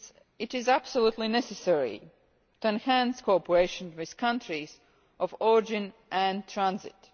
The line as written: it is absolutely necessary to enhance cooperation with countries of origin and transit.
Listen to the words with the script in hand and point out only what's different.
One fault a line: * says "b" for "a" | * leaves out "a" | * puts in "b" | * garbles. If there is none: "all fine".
all fine